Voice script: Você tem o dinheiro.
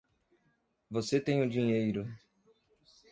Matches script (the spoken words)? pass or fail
pass